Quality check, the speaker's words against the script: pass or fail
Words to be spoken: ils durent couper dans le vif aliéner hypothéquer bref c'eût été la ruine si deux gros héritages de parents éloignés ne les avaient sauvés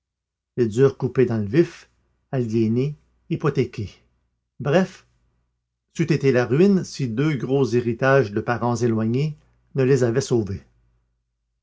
pass